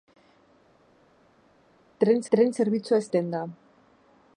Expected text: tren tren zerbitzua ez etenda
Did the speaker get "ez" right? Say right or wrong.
right